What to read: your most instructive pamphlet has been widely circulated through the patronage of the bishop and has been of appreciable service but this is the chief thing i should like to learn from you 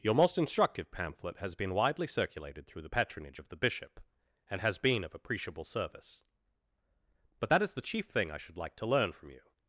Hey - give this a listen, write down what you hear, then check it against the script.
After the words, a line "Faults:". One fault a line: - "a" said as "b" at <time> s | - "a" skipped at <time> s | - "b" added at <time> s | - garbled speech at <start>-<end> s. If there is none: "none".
your most instructive pamphlet has been widely circulated through the patronage of the bishop and has been of appreciable service but that is the chief thing i should like to learn from you
Faults:
- "this" said as "that" at 7.5 s